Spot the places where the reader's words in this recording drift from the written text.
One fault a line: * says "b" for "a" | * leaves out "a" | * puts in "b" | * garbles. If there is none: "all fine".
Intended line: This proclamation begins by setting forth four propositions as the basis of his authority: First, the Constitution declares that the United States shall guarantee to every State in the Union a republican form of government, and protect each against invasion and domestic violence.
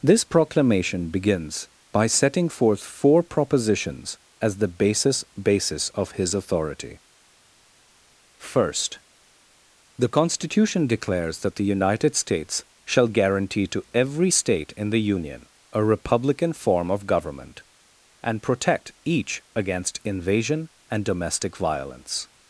* puts in "basis"